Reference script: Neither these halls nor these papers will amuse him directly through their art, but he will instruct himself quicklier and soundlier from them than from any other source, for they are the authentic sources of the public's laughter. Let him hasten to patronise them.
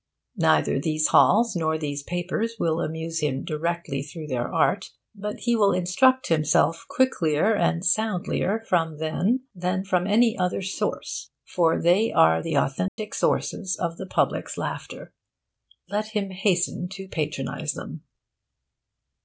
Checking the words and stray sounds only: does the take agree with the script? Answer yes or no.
no